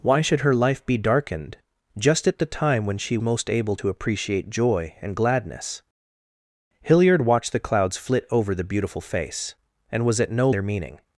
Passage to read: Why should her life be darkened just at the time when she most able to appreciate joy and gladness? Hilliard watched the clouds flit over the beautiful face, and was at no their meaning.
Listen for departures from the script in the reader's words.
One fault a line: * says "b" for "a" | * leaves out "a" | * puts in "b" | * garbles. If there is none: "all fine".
all fine